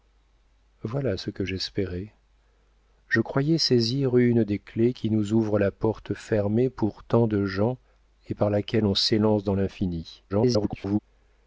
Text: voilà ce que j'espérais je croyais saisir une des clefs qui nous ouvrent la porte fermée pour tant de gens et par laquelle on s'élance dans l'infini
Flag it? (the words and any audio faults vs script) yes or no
yes